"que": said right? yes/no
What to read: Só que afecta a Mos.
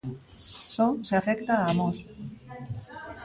no